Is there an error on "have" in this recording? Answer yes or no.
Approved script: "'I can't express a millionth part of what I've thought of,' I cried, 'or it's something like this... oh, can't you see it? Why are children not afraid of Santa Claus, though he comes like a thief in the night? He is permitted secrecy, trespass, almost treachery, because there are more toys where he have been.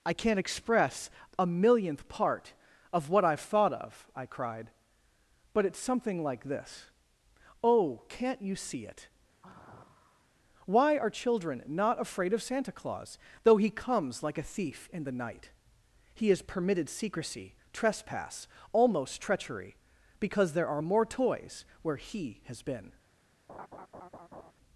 yes